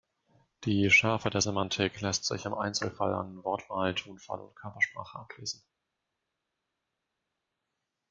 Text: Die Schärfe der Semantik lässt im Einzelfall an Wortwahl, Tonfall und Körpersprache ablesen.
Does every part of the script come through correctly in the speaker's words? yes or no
no